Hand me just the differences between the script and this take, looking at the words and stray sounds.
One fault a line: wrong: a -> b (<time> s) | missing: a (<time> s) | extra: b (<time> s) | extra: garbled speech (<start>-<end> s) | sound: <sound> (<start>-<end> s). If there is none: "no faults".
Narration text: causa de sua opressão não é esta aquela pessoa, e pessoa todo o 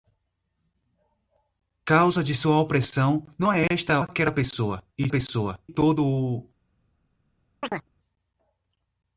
sound: chirp (7.6-7.9 s)